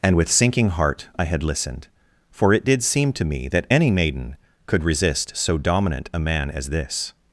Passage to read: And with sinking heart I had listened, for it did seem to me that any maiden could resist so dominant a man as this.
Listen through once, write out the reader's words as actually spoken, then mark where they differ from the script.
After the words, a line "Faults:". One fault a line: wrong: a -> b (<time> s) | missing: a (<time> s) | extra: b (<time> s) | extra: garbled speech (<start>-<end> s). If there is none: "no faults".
And with sinking heart I had listened, for it did seem to me that any maiden could resist so dominant a man as this.
Faults:
no faults